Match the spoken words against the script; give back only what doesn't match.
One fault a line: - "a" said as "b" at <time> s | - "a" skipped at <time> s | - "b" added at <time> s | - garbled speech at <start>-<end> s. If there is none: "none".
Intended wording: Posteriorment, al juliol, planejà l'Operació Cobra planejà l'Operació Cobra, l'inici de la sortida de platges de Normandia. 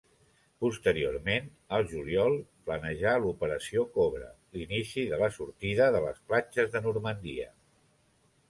- "planejà l'Operació Cobra" skipped at 4.3 s
- "les" added at 6.1 s